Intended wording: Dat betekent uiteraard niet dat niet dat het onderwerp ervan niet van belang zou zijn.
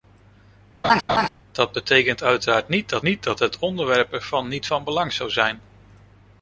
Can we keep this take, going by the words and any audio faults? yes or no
no